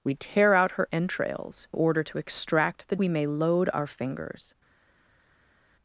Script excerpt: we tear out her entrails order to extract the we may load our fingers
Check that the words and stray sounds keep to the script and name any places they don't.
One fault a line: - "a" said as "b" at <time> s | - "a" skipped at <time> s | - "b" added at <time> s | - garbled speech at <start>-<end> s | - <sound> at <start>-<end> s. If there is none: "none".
none